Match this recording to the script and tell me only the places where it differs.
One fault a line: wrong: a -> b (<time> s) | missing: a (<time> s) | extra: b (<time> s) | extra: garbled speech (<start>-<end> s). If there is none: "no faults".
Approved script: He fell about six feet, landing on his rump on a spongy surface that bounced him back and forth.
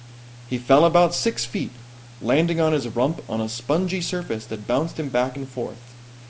no faults